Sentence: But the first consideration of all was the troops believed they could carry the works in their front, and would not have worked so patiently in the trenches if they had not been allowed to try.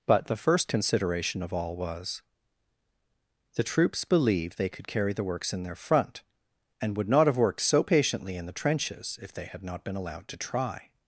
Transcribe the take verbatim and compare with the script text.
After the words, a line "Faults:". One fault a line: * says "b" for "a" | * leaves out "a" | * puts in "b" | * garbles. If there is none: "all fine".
But the first consideration of all was the troops believed they could carry the works in their front, and would not have worked so patiently in the trenches if they had not been allowed to try.
Faults:
all fine